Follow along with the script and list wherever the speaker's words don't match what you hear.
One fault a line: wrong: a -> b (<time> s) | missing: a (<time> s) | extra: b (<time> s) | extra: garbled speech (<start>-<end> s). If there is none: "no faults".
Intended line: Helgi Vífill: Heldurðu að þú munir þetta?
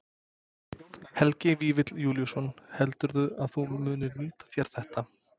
extra: Júlíusson (2.0 s)
extra: nýta þér (4.2 s)